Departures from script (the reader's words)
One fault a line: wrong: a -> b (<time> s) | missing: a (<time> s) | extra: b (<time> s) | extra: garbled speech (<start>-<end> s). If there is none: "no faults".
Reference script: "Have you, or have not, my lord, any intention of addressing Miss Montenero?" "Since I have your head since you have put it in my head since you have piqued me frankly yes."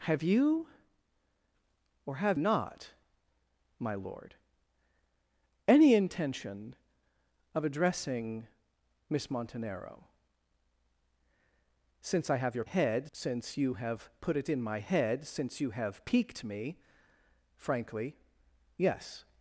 no faults